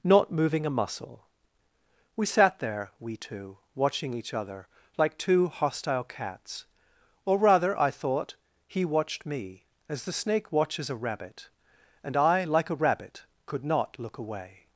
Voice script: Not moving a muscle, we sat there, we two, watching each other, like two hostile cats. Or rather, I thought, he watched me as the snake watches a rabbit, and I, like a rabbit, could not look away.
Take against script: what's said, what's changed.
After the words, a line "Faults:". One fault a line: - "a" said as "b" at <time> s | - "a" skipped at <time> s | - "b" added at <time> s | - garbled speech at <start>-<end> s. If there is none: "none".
Not moving a muscle, we sat there, we two, watching each other, like two hostile cats. Or rather, I thought, he watched me as the snake watches a rabbit, and I, like a rabbit, could not look away.
Faults:
none